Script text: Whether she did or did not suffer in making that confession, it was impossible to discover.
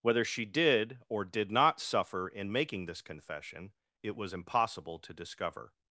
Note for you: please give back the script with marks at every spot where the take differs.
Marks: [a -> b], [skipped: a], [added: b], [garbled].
Whether she did or did not suffer in making [that -> this] confession, it was impossible to discover.